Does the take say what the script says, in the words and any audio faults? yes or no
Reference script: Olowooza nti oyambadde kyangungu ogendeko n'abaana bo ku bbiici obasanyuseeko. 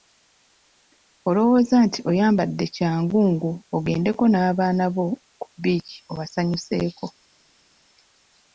yes